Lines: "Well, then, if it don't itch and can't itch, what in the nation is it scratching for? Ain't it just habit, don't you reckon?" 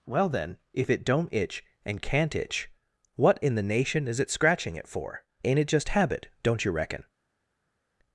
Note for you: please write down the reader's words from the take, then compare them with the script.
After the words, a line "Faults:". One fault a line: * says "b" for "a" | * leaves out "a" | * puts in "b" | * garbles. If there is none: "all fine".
"Well, then, if it don't itch and can't itch, what in the nation is it scratching it for? Ain't it just habit, don't you reckon?"
Faults:
* puts in "it"